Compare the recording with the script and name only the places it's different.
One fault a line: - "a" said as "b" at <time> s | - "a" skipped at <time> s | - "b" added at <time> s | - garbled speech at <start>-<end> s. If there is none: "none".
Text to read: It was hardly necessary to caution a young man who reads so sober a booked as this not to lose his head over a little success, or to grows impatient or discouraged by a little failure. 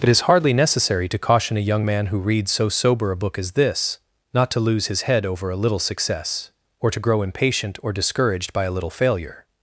- "was" said as "is" at 0.1 s
- "booked" said as "book" at 3.2 s
- "grows" said as "grow" at 7.0 s